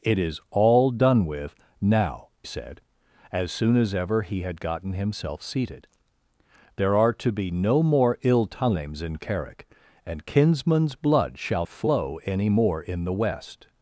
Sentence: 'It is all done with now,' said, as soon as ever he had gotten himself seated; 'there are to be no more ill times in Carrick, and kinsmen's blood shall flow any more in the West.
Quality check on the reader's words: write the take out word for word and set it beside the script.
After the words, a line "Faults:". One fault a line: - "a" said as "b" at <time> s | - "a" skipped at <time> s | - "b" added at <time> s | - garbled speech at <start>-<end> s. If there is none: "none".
'It is all done with now,' said, as soon as ever he had gotten himself seated; 'there are to be no more ill times in Carrick, and kinsmen's blood shall flow any more in the West.
Faults:
none